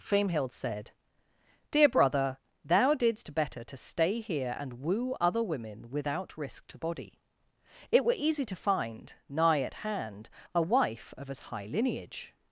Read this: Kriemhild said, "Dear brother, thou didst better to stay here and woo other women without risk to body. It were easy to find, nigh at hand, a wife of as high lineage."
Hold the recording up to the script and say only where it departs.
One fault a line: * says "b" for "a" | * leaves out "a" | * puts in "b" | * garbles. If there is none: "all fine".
all fine